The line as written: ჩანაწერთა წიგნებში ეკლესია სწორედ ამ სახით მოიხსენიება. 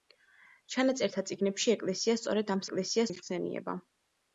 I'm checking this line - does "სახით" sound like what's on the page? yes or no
no